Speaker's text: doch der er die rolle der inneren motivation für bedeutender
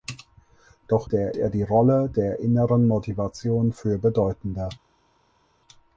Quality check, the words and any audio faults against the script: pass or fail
pass